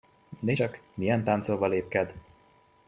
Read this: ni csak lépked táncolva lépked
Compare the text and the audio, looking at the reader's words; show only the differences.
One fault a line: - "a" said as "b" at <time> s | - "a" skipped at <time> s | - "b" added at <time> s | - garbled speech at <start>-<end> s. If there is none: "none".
- "lépked" said as "milyen" at 0.9 s